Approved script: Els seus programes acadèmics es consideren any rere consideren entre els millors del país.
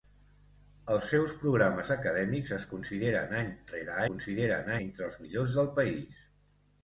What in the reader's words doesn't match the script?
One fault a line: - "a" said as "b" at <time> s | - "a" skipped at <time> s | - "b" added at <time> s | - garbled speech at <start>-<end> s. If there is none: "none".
none